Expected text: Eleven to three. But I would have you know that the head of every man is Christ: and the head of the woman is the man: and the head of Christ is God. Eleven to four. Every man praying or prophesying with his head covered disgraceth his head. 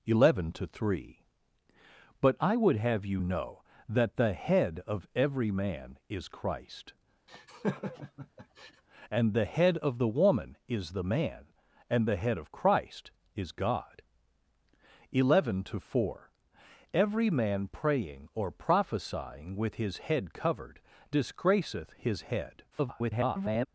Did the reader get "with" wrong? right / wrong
right